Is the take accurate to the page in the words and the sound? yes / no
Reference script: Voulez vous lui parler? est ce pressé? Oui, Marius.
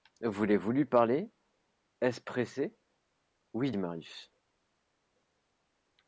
yes